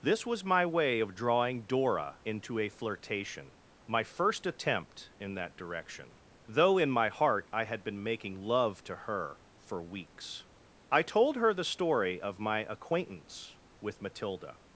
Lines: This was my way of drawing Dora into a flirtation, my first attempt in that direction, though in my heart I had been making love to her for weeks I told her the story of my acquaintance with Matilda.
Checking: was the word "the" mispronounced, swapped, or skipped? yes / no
no